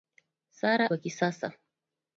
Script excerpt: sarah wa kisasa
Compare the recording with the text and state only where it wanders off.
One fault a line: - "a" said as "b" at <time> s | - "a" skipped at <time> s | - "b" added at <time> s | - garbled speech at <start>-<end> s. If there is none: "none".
none